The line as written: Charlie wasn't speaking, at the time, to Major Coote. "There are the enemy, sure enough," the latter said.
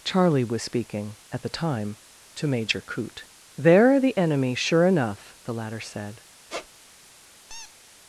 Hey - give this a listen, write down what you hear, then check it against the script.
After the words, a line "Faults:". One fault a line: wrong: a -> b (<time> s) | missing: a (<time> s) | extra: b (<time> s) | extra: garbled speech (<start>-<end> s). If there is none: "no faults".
Charlie was speaking, at the time, to Major Coote. "There are the enemy, sure enough," the latter said.
Faults:
wrong: wasn't -> was (0.4 s)